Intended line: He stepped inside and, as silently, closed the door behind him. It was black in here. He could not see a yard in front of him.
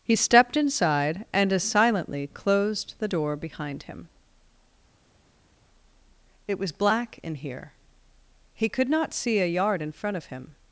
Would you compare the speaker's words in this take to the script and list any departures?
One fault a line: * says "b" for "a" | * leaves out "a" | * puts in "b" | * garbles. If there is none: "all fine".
all fine